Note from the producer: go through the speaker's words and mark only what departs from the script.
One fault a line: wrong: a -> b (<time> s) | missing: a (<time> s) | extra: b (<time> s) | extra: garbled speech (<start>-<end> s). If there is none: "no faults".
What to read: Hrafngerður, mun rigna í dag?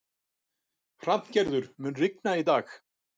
no faults